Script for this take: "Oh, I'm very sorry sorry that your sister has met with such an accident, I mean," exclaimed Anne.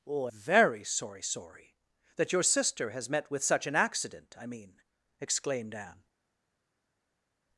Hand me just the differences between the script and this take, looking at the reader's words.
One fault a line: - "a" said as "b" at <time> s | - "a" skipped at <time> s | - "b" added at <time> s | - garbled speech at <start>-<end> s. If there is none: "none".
- "I'm" skipped at 0.3 s